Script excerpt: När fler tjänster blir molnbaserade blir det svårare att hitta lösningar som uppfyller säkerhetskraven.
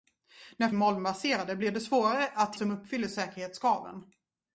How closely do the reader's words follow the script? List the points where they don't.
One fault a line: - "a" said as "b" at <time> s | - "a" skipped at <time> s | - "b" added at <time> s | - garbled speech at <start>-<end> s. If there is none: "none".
- "fler tjänster blir" skipped at 0.7 s
- "hitta lösningar" skipped at 2.6 s